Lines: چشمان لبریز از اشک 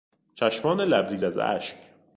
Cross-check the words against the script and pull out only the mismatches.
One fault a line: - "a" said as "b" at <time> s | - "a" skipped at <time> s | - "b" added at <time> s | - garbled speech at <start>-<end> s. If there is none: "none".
none